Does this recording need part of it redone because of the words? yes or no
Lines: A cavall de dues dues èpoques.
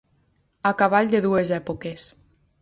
yes